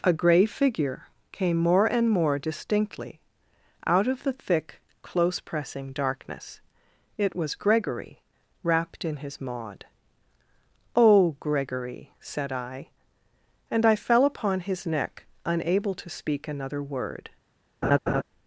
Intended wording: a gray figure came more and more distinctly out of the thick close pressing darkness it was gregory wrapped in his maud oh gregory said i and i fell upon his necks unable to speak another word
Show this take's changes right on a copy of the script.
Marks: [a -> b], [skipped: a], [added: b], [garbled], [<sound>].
a gray figure came more and more distinctly out of the thick close pressing darkness it was gregory wrapped in his maud oh gregory said i and i fell upon his [necks -> neck] unable to speak another word [laugh]